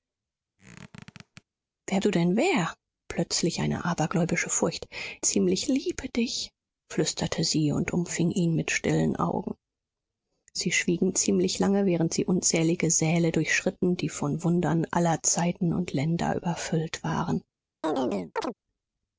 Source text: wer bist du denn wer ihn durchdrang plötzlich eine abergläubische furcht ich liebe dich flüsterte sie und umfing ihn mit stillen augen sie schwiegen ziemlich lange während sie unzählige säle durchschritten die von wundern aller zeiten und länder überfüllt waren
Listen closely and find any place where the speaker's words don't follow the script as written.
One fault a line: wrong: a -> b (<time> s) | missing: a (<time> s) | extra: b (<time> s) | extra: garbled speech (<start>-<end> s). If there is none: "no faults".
missing: bist (2.0 s)
missing: ihn durchdrang (2.7 s)
wrong: ich -> ziemlich (5.2 s)